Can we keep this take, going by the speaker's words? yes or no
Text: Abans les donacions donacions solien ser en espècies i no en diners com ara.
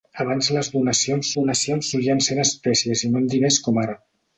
yes